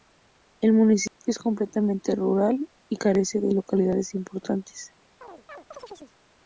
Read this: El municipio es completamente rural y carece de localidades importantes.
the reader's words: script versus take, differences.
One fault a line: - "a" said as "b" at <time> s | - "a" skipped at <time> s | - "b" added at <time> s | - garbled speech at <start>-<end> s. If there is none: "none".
none